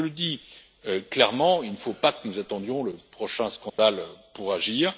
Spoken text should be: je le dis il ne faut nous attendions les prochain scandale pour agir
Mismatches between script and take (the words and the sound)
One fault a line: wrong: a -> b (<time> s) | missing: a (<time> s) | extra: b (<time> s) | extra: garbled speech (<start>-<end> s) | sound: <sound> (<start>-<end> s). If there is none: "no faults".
extra: clairement (1.1 s)
extra: pas que (1.9 s)
wrong: les -> le (2.8 s)
sound: dropout (3.7-3.8 s)